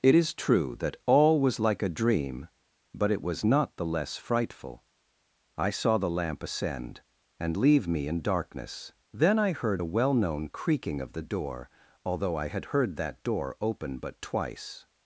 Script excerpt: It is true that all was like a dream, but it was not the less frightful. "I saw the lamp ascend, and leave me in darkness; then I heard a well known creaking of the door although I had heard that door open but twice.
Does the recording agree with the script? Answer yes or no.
yes